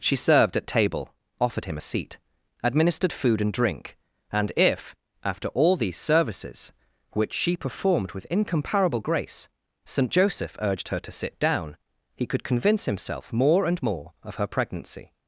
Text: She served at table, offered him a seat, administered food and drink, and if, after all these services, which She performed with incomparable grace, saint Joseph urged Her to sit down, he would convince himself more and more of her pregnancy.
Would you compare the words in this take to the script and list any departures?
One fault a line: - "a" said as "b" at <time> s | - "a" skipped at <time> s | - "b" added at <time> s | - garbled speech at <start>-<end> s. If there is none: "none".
- "would" said as "could" at 12.2 s